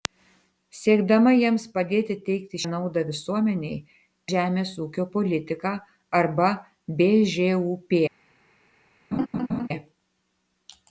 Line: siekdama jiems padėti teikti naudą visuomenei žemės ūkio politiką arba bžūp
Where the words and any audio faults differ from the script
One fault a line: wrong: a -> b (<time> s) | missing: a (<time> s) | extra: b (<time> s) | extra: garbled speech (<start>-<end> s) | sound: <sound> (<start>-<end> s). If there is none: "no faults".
sound: laugh (9.1-9.7 s)